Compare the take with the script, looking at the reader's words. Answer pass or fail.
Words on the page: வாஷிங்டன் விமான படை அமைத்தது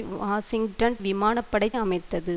pass